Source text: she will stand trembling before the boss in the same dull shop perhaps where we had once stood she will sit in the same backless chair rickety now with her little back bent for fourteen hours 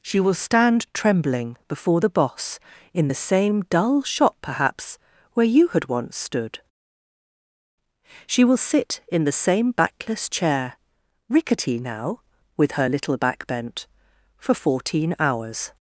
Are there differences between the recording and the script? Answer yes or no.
yes